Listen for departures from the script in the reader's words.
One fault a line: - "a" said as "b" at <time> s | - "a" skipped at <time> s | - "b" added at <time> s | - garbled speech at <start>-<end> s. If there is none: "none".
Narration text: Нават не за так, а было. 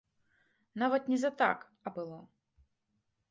none